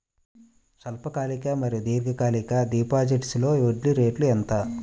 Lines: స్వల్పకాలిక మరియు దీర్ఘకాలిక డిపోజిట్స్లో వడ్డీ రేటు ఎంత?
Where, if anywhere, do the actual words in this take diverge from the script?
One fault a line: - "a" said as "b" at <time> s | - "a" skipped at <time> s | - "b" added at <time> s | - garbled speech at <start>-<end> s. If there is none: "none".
none